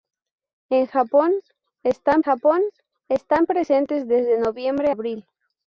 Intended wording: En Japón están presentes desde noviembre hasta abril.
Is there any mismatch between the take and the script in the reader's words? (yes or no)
yes